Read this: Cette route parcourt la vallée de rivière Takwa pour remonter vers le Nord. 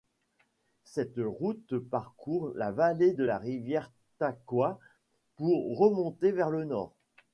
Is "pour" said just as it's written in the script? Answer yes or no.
yes